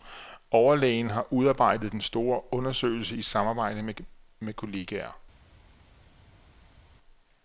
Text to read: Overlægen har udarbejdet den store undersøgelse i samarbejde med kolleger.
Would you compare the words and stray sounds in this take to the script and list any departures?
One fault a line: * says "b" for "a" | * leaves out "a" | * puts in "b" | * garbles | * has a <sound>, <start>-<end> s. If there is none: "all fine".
all fine